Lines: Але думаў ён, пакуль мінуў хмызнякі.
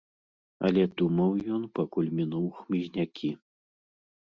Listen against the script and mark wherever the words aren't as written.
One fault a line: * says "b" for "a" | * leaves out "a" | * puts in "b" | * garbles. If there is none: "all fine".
all fine